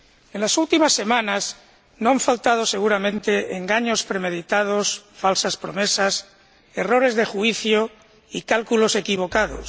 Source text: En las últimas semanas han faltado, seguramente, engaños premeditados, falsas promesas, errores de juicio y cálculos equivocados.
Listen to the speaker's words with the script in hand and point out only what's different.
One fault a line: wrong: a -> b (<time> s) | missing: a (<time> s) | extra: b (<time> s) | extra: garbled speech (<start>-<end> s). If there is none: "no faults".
extra: no (2.0 s)